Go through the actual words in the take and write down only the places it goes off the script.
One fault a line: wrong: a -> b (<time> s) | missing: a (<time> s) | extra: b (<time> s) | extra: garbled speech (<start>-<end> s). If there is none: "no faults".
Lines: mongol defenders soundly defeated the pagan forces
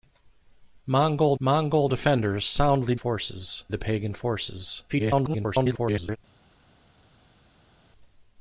extra: mongol (1.4 s)
wrong: defeated -> forces (2.9 s)
extra: garbled speech (4.9-6.2 s)